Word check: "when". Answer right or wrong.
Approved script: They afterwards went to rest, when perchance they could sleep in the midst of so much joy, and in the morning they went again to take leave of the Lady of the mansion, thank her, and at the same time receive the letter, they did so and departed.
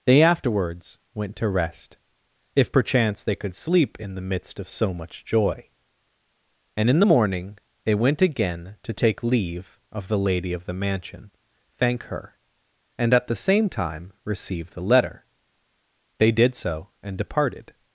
wrong